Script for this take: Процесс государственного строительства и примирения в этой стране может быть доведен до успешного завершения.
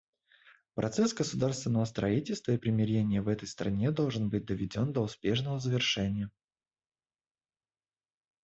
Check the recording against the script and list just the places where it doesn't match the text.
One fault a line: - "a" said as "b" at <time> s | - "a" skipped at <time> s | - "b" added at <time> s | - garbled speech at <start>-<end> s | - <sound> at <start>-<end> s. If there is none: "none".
- "может" said as "должен" at 3.9 s